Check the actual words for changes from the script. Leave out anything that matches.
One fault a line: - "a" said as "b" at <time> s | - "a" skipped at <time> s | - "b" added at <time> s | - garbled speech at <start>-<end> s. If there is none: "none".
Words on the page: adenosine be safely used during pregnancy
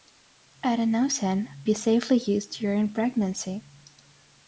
none